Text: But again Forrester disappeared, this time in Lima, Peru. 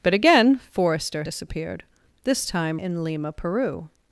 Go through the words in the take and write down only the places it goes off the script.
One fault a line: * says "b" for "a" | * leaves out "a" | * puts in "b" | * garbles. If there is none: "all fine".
all fine